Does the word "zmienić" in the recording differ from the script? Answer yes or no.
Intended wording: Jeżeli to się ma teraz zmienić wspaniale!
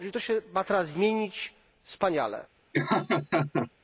no